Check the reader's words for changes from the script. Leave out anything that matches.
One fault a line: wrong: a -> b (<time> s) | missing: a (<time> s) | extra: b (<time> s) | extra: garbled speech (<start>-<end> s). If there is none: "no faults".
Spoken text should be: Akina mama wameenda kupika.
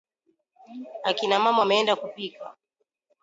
no faults